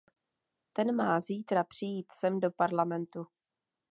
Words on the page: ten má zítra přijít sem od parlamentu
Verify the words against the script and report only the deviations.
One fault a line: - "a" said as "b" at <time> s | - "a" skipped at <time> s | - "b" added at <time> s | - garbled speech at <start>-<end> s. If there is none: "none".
- "od" said as "do" at 2.4 s